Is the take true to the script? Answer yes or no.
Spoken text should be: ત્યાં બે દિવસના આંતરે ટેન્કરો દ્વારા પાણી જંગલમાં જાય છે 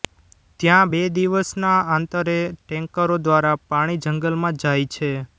yes